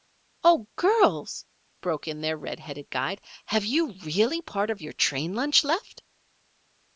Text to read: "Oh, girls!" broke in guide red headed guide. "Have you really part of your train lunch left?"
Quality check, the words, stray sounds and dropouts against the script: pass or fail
fail